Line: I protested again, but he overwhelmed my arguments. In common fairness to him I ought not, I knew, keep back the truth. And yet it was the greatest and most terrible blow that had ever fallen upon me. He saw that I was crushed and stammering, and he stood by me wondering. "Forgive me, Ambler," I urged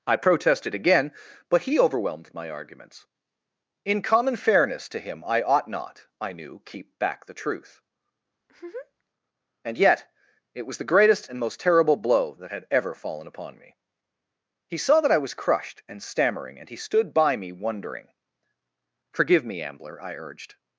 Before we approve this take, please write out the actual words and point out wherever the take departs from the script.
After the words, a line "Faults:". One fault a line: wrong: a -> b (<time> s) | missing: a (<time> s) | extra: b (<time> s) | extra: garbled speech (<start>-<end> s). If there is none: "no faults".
I protested again, but he overwhelmed my arguments. In common fairness to him I ought not, I knew, keep back the truth. And yet it was the greatest and most terrible blow that had ever fallen upon me. He saw that I was crushed and stammering, and he stood by me wondering. "Forgive me, Ambler," I urged
Faults:
no faults